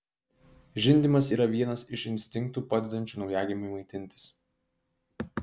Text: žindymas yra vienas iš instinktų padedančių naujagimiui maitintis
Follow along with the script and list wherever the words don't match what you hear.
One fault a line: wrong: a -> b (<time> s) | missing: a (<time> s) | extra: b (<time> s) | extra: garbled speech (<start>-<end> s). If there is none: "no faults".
no faults